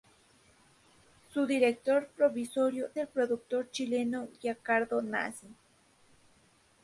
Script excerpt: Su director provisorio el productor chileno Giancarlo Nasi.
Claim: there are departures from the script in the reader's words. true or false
false